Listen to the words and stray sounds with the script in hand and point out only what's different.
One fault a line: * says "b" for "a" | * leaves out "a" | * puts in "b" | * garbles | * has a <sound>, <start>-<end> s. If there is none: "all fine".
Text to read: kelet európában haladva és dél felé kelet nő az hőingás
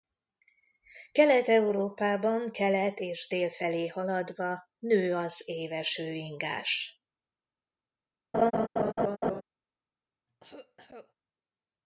* says "kelet" for "haladva"
* says "haladva" for "kelet"
* puts in "éves"
* has a laugh, 8.3-9.4 s
* has a cough, 10.3-11.1 s